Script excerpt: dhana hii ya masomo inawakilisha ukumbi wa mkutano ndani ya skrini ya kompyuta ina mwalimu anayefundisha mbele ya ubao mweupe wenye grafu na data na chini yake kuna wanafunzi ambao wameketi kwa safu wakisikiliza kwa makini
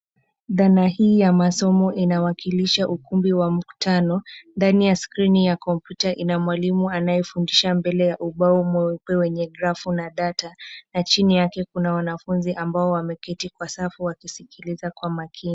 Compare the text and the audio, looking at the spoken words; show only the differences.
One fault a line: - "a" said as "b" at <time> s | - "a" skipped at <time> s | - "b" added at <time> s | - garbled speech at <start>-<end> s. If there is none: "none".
none